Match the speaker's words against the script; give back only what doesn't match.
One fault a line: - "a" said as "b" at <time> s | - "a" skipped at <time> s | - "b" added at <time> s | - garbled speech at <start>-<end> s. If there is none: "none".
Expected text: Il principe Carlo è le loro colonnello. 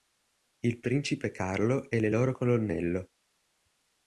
none